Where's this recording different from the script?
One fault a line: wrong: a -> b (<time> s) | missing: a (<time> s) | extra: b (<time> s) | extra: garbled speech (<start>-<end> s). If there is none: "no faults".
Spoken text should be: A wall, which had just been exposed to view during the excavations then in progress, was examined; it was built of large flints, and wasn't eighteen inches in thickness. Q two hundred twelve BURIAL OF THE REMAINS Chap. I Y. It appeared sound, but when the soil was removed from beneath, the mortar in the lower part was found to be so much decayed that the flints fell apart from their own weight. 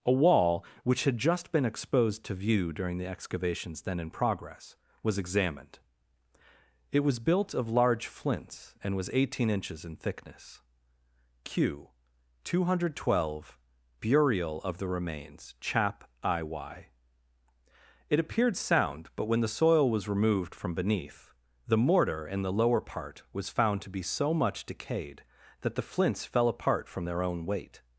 wrong: wasn't -> was (8.9 s)